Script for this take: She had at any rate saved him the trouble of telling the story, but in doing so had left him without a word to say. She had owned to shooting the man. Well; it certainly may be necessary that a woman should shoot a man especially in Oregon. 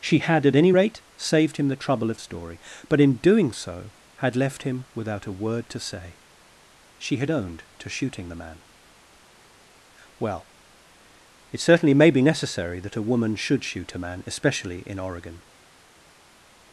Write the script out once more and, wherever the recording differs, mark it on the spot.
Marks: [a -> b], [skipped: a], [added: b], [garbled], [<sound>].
She had at any rate saved him the trouble of [skipped: telling the] story, but in doing so had left him without a word to say. She had owned to shooting the man. Well; it certainly may be necessary that a woman should shoot a man especially in Oregon.